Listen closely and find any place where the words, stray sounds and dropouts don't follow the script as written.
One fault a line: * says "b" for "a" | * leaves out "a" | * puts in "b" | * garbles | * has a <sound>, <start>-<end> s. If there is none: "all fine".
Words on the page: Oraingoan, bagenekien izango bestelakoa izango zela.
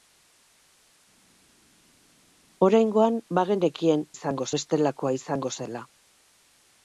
all fine